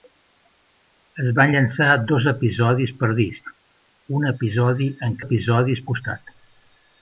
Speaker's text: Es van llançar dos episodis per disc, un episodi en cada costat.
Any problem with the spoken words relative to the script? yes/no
yes